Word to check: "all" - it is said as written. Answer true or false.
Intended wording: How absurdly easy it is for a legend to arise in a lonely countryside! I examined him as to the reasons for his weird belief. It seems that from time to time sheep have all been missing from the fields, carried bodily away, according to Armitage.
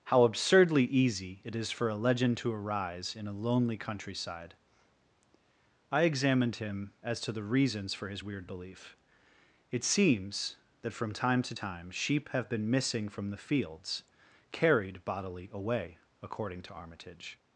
false